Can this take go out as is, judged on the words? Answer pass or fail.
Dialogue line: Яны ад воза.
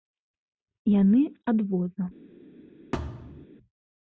pass